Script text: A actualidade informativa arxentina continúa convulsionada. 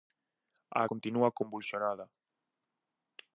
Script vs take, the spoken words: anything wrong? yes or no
yes